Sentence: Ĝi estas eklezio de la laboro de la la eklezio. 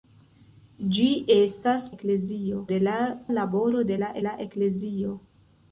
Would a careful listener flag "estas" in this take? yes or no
no